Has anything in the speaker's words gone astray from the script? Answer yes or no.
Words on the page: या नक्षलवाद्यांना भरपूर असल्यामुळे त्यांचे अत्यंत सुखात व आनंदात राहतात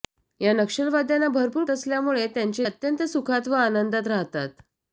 no